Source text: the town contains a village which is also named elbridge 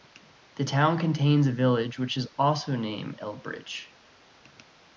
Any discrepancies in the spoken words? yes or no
no